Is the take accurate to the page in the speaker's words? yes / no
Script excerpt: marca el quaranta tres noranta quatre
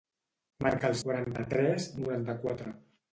yes